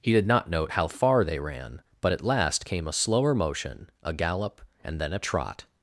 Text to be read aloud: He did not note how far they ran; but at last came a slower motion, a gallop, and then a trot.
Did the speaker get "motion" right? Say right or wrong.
right